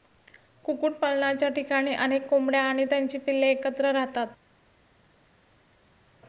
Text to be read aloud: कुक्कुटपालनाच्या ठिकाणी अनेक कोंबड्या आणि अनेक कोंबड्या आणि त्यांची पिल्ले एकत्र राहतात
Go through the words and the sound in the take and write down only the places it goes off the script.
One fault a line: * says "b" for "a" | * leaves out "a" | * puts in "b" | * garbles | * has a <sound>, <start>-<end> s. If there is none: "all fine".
* leaves out "अनेक कोंबड्या आणि"